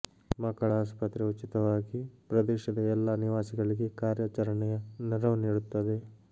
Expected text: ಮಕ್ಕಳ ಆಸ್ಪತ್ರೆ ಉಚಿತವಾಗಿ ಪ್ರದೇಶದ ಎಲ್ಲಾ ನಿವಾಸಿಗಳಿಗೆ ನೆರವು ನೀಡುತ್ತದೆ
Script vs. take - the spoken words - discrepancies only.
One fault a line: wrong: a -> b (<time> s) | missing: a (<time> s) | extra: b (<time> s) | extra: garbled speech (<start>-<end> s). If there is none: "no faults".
extra: ಕಾರ್ಯಾಚರಣೆಯ (4.0 s)